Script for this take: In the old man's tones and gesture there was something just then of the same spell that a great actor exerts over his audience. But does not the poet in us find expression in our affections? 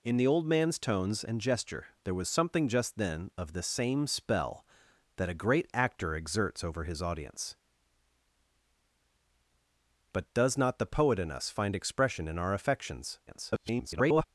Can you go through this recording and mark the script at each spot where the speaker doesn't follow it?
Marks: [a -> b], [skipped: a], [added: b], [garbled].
In the old man's tones and gesture there was something just then of the same spell that a great actor exerts over his audience. But does not the poet in us find expression in our affections? [garbled]